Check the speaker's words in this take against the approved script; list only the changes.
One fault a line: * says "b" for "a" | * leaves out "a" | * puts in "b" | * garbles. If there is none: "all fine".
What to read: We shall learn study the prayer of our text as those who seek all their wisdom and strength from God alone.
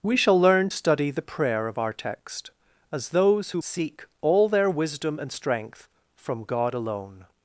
all fine